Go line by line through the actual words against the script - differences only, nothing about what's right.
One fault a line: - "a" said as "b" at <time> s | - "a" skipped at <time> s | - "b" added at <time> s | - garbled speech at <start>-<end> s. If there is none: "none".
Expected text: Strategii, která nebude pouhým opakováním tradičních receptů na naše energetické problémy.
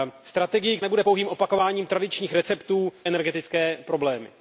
- "která" skipped at 0.8 s
- "na naše" skipped at 2.9 s